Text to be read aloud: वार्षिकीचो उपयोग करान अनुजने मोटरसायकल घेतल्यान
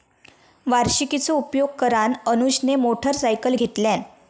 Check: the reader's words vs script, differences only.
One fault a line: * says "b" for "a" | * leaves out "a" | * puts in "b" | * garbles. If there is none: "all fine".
all fine